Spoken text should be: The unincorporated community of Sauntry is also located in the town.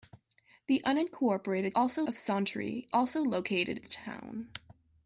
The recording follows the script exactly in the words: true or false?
false